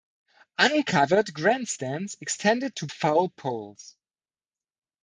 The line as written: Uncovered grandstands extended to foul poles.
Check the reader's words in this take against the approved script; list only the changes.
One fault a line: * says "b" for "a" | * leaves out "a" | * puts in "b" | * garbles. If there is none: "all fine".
all fine